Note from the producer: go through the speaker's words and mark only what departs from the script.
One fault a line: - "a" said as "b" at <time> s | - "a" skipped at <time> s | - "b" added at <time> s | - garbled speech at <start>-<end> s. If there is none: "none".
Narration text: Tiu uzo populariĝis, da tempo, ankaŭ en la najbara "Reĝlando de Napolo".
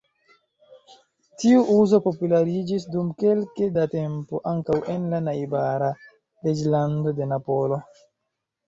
- "dum kelke" added at 3.0 s